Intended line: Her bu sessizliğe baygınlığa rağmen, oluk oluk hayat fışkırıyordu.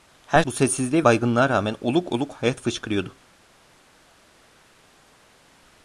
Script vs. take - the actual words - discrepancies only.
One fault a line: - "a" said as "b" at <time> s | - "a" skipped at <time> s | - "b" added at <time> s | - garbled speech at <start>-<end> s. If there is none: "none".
none